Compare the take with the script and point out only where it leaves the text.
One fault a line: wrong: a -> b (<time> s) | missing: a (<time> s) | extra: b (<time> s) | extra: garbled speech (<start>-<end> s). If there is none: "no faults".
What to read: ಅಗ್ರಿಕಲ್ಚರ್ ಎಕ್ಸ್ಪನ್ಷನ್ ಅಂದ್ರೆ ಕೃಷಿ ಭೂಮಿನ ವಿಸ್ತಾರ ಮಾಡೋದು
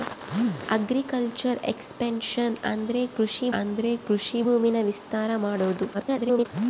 extra: ಅಂದ್ರೆ ಕೃಷಿ (3.5 s)
extra: garbled speech (5.9-6.5 s)